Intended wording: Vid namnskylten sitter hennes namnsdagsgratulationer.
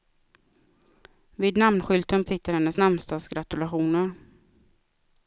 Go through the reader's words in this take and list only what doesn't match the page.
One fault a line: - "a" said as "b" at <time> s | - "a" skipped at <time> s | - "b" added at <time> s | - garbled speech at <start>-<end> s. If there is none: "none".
none